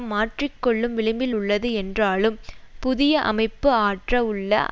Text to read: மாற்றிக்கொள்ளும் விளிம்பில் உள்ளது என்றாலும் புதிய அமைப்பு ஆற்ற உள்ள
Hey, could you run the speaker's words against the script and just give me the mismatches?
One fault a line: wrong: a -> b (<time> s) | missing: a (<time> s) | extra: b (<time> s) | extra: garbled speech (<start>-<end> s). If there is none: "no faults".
no faults